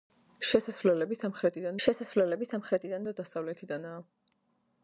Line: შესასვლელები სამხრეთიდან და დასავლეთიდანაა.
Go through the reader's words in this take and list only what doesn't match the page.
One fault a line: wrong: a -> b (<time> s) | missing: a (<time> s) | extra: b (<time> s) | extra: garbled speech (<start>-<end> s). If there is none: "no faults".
extra: შესასვლელები სამხრეთიდან (1.8 s)